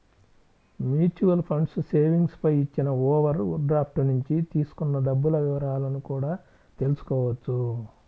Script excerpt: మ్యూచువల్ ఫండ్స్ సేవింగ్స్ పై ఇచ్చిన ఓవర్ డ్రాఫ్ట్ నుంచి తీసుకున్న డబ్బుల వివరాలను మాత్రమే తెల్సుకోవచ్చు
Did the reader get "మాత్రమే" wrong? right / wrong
wrong